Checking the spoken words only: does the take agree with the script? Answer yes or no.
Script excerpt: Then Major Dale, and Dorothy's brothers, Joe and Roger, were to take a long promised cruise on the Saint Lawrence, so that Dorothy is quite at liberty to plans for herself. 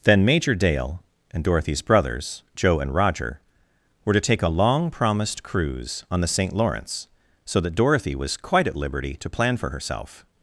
no